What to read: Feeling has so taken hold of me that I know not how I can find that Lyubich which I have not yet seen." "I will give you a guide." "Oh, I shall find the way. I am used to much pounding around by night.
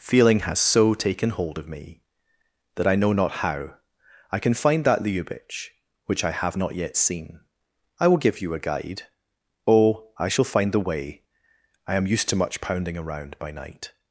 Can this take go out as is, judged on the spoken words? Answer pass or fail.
pass